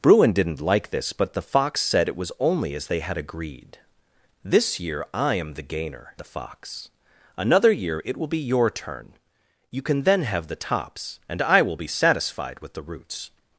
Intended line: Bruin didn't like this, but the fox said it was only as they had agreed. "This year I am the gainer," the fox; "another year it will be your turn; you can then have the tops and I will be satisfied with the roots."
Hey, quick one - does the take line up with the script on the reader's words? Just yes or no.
yes